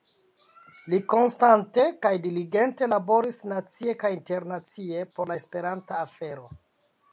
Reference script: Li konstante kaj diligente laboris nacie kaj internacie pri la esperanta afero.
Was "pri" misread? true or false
true